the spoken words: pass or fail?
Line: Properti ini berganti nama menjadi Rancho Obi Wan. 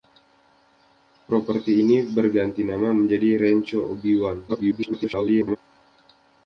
fail